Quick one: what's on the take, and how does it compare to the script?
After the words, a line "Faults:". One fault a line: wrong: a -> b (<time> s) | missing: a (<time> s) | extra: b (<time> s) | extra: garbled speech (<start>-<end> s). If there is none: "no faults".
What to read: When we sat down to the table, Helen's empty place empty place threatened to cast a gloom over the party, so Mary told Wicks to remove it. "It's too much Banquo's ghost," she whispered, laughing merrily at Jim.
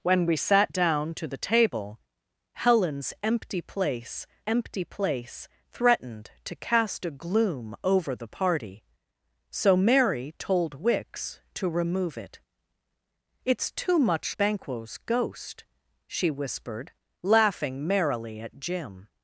When we sat down to the table, Helen's empty place empty place threatened to cast a gloom over the party, so Mary told Wicks to remove it. "It's too much Banquo's ghost," she whispered, laughing merrily at Jim.
Faults:
no faults